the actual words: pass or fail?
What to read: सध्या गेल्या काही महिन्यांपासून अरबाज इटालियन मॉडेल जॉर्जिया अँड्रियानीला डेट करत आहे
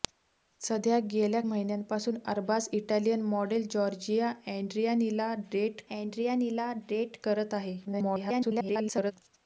fail